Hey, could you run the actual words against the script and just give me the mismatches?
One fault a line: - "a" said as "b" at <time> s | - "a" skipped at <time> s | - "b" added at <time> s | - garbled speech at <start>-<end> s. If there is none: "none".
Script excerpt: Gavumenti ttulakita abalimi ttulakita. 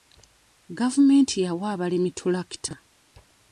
- "ttulakita" said as "yawa" at 1.4 s